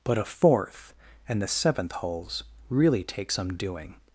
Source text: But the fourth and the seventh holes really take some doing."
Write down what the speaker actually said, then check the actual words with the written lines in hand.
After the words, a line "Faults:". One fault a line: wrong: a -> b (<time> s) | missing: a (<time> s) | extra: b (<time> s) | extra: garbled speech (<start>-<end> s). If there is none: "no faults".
But a fourth and the seventh holes really take some doing."
Faults:
wrong: the -> a (0.2 s)